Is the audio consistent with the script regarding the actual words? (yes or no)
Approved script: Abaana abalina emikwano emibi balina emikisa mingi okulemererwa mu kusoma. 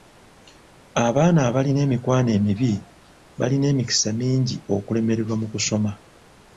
yes